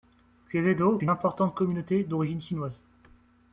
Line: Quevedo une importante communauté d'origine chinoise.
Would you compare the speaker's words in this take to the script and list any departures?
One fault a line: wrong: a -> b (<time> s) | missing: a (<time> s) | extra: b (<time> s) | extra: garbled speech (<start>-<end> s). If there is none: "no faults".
no faults